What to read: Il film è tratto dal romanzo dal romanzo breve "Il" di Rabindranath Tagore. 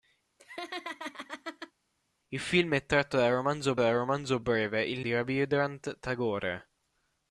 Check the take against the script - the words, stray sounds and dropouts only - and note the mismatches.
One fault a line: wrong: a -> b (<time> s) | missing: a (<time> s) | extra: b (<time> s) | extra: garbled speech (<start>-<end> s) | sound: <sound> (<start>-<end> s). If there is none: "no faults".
sound: laugh (0.4-1.7 s)